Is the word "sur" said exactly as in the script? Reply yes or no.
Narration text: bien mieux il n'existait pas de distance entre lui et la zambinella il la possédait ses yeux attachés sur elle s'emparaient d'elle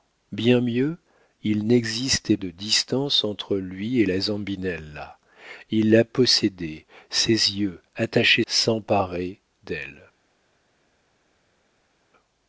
no